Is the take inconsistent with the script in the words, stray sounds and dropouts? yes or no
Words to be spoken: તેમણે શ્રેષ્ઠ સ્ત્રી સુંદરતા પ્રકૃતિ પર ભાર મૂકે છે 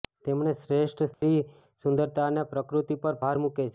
yes